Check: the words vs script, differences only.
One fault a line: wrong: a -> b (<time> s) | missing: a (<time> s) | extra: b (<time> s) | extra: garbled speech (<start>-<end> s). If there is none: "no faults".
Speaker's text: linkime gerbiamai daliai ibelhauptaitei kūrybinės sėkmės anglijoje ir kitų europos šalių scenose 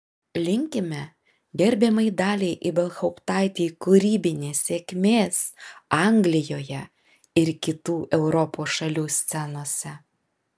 no faults